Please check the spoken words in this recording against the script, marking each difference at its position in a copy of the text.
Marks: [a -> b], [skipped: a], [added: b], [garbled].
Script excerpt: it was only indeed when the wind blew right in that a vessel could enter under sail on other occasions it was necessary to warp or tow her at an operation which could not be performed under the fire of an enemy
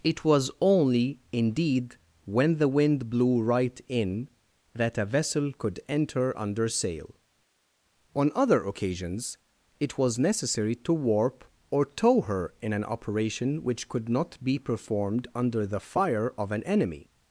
it was only indeed when the wind blew right in that a vessel could enter under sail on other occasions it was necessary to warp or tow her [at -> in] an operation which could not be performed under the fire of an enemy